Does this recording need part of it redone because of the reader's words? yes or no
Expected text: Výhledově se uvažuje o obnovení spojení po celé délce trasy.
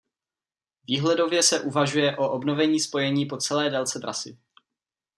no